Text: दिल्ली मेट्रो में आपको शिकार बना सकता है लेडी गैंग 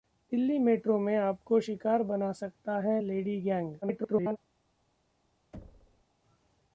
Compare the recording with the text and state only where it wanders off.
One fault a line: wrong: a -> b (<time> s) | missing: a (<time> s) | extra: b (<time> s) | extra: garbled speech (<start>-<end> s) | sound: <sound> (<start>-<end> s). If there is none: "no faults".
extra: garbled speech (3.8-4.4 s)
sound: thud (5.5-6.0 s)